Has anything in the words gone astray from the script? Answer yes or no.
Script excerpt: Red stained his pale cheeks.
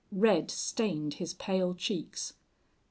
no